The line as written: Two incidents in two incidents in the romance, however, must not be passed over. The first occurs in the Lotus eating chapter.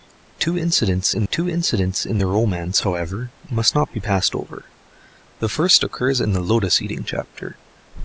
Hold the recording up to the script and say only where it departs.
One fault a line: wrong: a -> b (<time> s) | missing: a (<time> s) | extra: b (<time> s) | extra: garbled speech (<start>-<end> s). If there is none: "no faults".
no faults